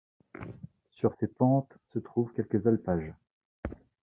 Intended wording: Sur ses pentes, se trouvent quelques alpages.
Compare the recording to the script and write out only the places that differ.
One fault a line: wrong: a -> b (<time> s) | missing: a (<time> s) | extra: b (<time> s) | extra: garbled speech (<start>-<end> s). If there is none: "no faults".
no faults